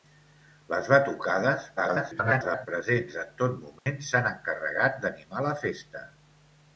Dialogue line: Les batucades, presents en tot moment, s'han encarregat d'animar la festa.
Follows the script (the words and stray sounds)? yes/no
no